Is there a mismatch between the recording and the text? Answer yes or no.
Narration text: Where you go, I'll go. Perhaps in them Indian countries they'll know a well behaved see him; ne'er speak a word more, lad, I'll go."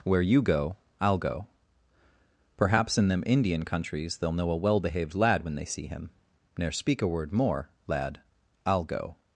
yes